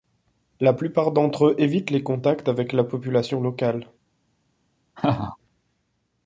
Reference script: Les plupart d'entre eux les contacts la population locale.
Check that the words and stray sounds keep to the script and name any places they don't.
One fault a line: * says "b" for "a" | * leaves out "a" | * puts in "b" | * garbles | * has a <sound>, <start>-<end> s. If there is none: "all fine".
* says "La" for "Les"
* puts in "évitent"
* puts in "avec"
* has a laugh, 5.0-5.4 s